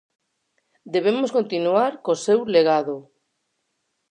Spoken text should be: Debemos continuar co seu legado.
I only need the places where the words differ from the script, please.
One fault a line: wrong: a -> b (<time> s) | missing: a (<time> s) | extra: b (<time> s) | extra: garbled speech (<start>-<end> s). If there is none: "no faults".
no faults